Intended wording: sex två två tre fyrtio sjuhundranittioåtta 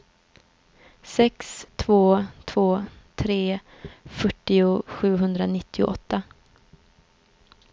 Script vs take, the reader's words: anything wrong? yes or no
no